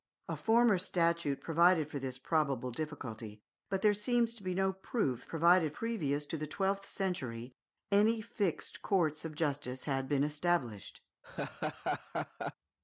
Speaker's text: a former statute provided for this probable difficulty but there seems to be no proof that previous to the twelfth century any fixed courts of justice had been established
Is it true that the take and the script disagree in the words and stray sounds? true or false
true